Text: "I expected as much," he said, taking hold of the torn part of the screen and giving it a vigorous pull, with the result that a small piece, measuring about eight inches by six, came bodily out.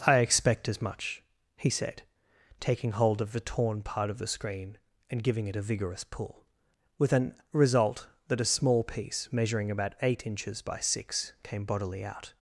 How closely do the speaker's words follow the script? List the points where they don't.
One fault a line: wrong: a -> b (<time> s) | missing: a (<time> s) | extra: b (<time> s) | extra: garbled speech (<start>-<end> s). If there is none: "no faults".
wrong: expected -> expect (0.2 s)
wrong: the -> an (7.1 s)